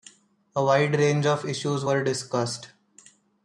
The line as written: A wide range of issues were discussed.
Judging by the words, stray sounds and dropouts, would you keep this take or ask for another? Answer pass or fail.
pass